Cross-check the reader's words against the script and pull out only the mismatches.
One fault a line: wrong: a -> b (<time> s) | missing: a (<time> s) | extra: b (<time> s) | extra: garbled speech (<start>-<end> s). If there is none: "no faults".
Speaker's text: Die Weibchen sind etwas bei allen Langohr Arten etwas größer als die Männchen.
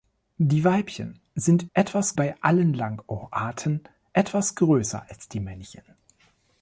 no faults